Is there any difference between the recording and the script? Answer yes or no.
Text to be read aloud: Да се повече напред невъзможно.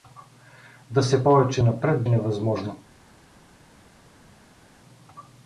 no